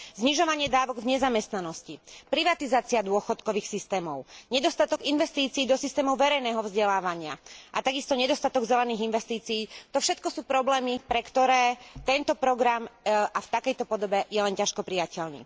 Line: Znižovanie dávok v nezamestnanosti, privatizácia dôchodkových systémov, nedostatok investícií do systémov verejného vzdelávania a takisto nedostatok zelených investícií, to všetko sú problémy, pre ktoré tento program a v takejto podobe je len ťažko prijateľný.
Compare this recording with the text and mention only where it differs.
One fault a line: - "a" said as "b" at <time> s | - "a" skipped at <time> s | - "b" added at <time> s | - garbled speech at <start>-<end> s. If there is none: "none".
none